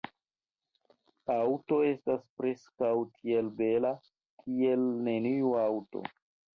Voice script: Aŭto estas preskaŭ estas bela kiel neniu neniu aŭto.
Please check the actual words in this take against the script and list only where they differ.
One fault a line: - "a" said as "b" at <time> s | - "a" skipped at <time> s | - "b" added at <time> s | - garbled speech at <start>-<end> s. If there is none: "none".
- "estas" said as "tiel" at 3.2 s
- "neniu" skipped at 5.6 s